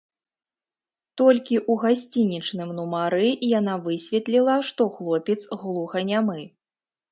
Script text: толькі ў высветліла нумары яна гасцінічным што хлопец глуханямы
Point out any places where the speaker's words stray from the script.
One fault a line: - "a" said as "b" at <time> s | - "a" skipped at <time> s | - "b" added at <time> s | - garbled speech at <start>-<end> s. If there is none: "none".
- "высветліла" said as "гасцінічным" at 1.8 s
- "гасцінічным" said as "высветліла" at 3.9 s